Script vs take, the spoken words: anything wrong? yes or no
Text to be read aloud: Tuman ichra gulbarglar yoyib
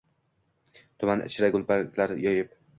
no